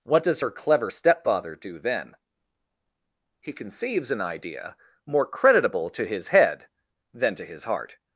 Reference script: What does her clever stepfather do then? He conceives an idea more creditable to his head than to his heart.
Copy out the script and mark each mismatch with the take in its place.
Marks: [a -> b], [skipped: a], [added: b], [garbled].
What does her clever stepfather do then? He conceives an idea more creditable to his head than to his heart.